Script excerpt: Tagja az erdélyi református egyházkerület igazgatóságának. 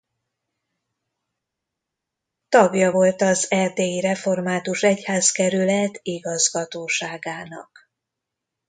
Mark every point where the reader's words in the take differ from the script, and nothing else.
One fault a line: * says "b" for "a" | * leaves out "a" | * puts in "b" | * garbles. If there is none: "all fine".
* puts in "volt"